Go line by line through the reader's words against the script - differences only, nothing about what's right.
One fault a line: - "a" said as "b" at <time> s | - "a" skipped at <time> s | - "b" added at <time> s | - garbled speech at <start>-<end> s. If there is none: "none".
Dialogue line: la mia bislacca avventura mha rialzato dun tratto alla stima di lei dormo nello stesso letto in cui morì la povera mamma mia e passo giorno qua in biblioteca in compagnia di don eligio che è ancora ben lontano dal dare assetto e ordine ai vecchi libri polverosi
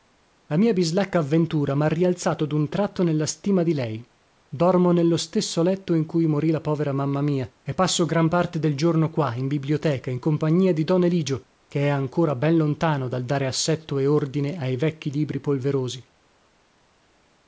- "alla" said as "nella" at 3.0 s
- "gran parte del" added at 8.1 s